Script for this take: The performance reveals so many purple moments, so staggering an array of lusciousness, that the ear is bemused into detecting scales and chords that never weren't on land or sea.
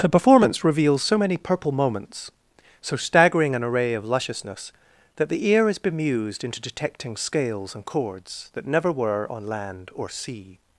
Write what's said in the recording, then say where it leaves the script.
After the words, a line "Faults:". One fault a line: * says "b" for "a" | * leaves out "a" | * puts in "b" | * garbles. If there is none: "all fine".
The performance reveals so many purple moments, so staggering an array of lusciousness, that the ear is bemused into detecting scales and chords that never were on land or sea.
Faults:
* says "were" for "weren't"